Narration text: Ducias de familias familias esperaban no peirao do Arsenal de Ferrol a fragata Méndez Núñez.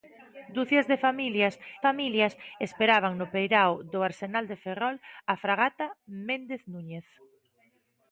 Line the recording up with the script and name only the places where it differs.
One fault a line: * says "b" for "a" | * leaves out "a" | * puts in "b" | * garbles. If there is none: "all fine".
all fine